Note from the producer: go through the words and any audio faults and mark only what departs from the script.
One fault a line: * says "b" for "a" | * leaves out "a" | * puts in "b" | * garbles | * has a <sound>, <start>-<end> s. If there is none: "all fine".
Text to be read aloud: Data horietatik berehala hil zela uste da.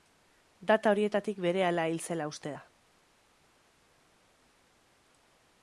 all fine